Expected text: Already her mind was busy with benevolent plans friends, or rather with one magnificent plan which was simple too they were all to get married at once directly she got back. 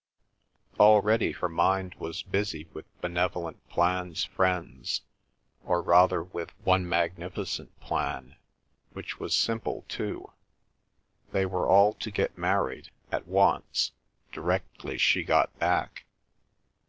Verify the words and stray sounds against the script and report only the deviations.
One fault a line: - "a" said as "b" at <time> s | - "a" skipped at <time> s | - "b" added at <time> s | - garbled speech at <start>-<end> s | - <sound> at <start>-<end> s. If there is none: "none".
none